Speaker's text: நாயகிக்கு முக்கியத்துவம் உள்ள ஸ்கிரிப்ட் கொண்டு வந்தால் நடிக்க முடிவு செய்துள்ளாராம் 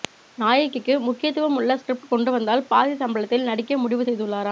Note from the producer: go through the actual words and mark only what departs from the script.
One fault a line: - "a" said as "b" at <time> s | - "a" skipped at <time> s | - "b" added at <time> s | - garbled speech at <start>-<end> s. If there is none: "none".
- "பாதி சம்பளத்தில்" added at 2.7 s